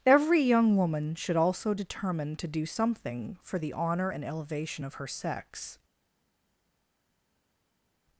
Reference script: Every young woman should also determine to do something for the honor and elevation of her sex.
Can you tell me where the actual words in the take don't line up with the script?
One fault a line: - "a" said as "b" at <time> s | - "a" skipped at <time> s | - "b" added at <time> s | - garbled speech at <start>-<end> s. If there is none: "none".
none